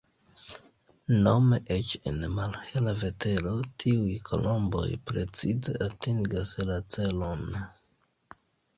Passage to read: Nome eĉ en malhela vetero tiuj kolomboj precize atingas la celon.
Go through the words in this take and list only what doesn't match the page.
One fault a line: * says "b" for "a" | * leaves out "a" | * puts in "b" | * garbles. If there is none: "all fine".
all fine